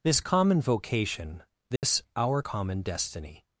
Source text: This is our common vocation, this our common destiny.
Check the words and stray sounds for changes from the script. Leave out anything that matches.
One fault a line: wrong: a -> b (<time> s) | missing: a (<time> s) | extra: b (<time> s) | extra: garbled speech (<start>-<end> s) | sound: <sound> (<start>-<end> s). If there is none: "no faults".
missing: is our (0.2 s)
sound: dropout (1.8-1.8 s)